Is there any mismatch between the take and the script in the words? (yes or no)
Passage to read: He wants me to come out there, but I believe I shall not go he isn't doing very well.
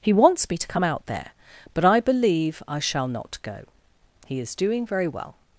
yes